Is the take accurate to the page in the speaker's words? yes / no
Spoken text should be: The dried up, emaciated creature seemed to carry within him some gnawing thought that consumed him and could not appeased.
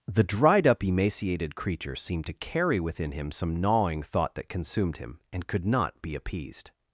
no